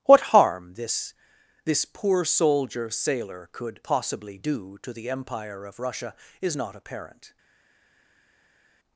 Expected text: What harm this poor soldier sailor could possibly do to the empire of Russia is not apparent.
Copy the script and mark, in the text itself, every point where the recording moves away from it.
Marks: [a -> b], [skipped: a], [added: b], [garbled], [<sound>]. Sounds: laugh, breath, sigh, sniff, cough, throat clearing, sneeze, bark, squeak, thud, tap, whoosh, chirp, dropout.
What harm this [added: this] poor soldier sailor could possibly do to the empire of Russia is not apparent.